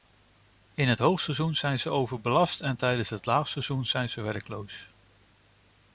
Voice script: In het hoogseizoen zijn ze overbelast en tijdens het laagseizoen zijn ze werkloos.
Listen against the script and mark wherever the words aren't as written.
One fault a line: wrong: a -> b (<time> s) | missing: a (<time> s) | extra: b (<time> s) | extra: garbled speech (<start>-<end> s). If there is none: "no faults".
no faults